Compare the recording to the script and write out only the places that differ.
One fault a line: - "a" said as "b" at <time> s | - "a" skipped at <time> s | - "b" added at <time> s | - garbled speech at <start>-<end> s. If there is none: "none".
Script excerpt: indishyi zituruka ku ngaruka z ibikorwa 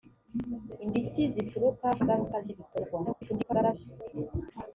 - "ku" skipped at 1.9 s
- garbled speech at 3.0-3.7 s